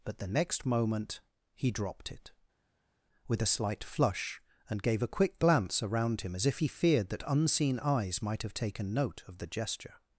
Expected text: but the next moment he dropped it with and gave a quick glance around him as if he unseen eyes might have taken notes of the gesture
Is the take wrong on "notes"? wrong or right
wrong